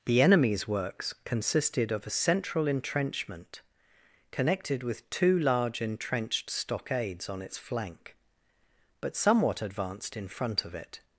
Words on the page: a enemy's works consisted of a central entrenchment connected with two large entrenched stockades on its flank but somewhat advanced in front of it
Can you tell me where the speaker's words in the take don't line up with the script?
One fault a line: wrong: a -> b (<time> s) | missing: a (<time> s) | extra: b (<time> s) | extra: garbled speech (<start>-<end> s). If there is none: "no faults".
wrong: a -> the (0.1 s)